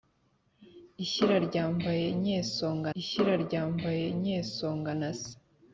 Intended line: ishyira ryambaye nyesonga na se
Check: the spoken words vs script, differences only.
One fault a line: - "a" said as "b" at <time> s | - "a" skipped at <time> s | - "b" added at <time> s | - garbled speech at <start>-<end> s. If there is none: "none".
- "ishyira ryambaye nyesonga" added at 3.0 s